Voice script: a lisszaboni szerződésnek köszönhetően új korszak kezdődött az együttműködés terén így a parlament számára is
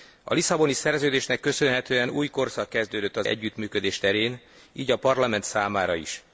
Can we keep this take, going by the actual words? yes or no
yes